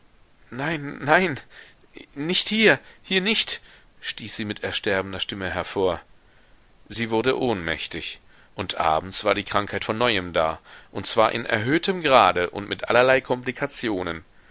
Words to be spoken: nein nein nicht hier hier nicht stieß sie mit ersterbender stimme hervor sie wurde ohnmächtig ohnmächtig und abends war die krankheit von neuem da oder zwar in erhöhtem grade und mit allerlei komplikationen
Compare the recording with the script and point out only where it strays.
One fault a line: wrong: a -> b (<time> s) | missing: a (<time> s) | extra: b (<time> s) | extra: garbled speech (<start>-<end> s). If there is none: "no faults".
missing: ohnmächtig (8.2 s)
wrong: oder -> und (10.9 s)